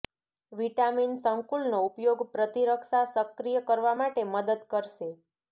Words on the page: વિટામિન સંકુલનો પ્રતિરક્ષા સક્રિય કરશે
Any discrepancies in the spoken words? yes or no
yes